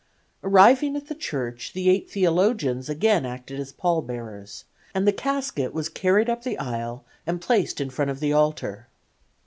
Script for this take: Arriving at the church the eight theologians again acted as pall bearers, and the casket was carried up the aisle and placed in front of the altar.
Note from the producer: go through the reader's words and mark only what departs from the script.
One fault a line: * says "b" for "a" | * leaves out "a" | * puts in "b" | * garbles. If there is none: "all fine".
all fine